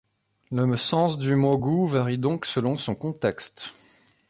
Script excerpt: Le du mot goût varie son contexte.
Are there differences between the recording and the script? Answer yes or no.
yes